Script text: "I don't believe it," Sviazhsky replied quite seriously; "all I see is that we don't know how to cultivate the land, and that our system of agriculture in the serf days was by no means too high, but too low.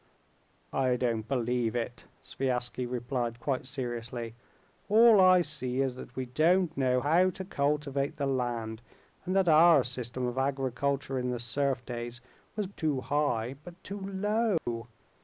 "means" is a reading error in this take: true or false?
true